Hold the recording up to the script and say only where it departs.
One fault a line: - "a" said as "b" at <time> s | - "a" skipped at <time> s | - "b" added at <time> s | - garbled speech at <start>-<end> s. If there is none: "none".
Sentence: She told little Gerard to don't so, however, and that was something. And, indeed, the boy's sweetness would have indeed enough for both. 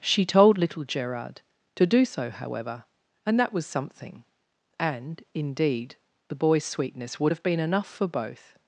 - "don't" said as "do" at 1.9 s
- "indeed" said as "been" at 7.4 s